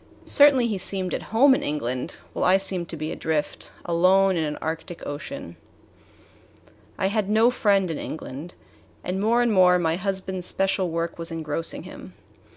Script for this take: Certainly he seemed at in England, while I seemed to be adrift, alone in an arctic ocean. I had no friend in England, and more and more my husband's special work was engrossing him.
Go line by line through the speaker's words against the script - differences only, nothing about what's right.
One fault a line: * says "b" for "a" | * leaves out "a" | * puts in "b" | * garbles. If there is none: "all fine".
* puts in "home"